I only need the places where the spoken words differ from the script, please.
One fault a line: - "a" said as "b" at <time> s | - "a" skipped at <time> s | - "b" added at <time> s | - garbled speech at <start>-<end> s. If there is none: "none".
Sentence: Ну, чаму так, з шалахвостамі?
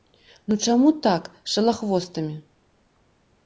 none